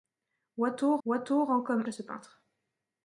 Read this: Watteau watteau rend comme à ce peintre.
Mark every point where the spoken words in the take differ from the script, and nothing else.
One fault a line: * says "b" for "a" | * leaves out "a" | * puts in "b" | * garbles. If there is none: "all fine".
all fine